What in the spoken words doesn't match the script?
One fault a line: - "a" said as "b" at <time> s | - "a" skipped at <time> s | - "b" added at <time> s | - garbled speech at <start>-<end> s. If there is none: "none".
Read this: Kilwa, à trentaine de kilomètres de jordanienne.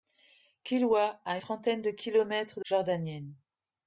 none